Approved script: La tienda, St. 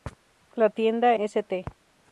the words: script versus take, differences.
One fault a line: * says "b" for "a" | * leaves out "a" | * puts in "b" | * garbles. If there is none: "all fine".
all fine